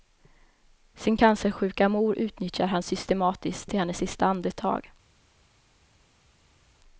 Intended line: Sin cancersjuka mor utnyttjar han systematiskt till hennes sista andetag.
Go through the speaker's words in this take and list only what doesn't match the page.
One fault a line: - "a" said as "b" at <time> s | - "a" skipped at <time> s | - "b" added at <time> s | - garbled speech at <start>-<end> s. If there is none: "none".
none